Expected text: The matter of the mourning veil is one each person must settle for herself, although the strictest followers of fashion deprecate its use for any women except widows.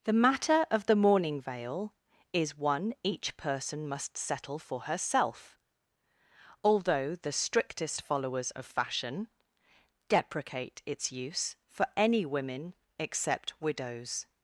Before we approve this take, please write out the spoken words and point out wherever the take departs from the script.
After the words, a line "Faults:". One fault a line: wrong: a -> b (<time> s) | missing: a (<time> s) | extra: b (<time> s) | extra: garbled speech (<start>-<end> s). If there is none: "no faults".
The matter of the mourning veil is one each person must settle for herself, although the strictest followers of fashion deprecate its use for any women except widows.
Faults:
no faults